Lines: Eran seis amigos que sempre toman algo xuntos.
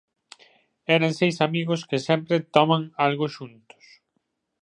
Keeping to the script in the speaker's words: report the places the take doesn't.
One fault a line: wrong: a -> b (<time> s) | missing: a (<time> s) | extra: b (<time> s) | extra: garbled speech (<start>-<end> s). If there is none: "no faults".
no faults